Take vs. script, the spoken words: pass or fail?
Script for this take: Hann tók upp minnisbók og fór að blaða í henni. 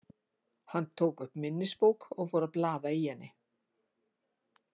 pass